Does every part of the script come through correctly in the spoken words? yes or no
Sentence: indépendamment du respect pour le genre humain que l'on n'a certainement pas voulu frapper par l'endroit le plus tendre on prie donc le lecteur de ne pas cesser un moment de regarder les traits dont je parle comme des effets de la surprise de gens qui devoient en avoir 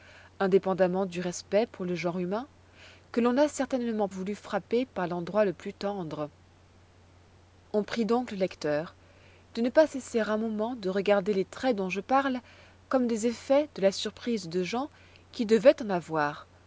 no